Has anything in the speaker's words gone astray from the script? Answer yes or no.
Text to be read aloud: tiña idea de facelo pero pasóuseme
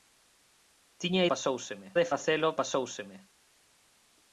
yes